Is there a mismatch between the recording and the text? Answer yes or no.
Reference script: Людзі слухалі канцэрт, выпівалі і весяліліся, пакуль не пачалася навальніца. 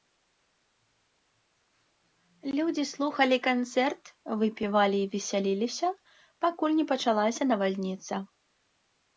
no